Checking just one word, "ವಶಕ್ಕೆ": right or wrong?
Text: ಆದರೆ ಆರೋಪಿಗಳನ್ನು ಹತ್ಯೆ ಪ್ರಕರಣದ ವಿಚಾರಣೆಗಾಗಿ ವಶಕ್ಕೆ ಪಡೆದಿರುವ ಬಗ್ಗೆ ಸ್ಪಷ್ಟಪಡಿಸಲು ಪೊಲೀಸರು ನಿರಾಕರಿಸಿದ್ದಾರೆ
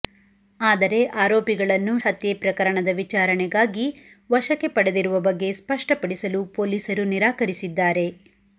right